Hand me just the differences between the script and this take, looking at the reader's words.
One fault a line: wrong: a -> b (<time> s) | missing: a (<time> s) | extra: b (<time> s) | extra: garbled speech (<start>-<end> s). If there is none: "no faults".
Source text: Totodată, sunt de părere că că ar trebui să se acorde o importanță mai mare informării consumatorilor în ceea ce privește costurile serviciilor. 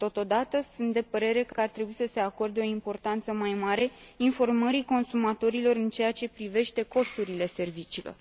no faults